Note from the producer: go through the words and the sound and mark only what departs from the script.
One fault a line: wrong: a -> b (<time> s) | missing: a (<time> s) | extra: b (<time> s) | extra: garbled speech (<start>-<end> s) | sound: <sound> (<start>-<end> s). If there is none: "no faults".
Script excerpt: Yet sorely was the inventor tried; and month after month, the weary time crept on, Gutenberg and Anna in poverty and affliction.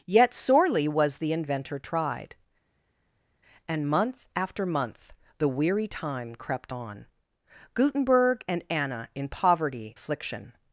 missing: and (10.0 s)